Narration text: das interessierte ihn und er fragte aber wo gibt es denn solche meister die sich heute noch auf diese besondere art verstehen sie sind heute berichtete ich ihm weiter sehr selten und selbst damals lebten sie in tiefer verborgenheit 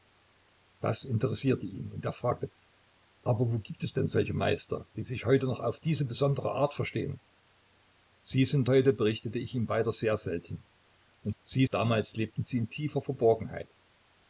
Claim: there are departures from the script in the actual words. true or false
true